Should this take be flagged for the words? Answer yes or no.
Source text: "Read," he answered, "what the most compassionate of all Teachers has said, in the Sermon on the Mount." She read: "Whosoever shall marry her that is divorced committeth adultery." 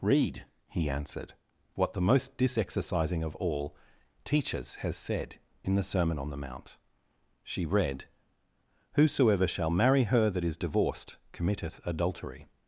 yes